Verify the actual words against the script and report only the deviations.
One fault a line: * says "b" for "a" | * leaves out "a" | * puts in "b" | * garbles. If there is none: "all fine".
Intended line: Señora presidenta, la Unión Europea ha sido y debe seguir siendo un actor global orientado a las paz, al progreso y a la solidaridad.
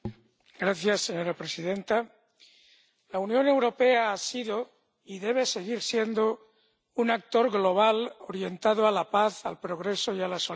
* says "la" for "las"